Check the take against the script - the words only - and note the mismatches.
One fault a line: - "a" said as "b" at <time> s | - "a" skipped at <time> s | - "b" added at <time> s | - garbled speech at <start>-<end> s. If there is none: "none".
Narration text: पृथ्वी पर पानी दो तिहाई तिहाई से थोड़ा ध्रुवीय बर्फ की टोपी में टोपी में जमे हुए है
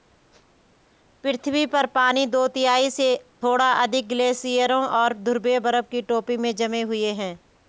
- "तिहाई" skipped at 2.9 s
- "अधिक ग्लेशियरों और" added at 3.7 s
- "टोपी में" skipped at 6.5 s